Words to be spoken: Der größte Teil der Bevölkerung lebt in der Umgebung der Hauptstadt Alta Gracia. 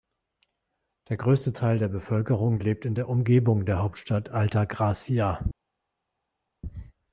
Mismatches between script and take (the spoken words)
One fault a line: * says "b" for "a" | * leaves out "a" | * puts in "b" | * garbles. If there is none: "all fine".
all fine